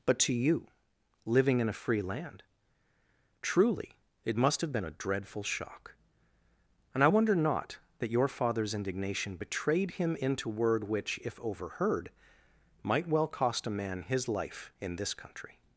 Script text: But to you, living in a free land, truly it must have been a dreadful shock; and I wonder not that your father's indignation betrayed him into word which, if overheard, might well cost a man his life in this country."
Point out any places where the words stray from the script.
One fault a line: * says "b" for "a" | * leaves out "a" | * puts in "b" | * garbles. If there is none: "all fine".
all fine